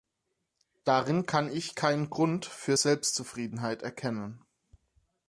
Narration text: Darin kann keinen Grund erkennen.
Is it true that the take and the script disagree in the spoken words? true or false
true